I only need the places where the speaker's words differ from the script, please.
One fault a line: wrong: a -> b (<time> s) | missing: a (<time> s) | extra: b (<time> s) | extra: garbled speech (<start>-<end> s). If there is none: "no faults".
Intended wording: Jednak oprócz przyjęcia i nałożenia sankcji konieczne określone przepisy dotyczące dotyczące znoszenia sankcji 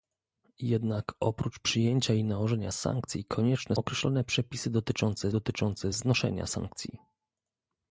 no faults